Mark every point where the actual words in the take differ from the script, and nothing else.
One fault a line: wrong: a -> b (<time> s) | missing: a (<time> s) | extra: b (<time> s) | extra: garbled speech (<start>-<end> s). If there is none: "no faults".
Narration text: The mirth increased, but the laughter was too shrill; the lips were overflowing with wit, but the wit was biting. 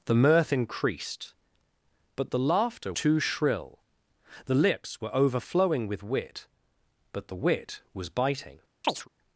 missing: was (2.9 s)